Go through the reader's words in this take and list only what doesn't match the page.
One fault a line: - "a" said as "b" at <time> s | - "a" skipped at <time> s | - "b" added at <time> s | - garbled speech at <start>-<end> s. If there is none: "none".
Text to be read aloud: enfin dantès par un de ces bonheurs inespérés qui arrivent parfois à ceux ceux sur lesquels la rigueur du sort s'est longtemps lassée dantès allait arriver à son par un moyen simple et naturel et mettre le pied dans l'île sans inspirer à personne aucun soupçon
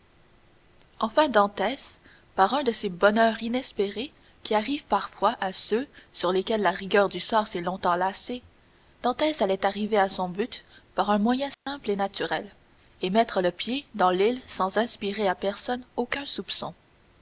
- "ceux" skipped at 5.9 s
- "but" added at 10.3 s